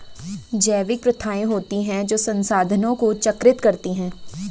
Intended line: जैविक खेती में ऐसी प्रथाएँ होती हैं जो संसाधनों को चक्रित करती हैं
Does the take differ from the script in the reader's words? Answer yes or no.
yes